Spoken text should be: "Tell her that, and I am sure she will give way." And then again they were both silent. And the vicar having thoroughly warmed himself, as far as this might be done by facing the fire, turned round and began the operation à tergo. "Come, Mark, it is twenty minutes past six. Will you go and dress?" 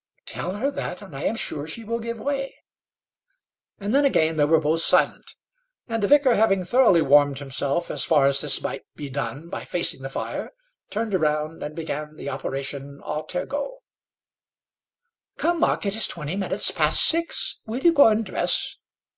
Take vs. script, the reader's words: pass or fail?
pass